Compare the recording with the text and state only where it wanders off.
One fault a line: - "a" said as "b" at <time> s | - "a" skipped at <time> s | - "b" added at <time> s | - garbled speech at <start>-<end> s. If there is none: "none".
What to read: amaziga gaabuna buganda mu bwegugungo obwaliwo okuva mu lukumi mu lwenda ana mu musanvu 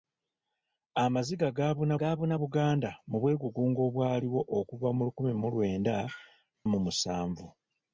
- "gaabuna" added at 2.0 s
- "ana" skipped at 5.9 s